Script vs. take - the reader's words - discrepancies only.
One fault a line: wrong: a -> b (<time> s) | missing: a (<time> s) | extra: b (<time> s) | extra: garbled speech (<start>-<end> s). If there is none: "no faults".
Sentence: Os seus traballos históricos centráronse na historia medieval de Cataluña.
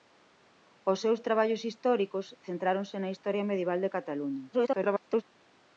extra: garbled speech (4.5-5.2 s)